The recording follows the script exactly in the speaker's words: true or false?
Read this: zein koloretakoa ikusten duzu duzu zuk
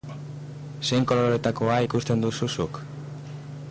false